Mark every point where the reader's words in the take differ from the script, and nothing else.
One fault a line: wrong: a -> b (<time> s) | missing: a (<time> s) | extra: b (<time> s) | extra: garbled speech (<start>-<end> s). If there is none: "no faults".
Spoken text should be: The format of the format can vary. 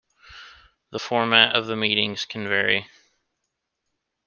wrong: format -> meetings (1.8 s)